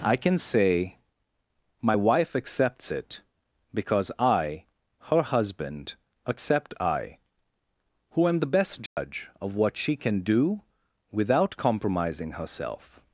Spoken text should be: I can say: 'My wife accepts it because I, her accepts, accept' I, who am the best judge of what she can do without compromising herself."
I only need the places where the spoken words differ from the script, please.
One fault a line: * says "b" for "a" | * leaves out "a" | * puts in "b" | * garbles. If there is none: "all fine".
* says "husband" for "accepts"